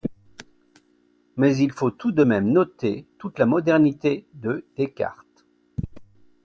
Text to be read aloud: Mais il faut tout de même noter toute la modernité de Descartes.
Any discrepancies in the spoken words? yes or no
no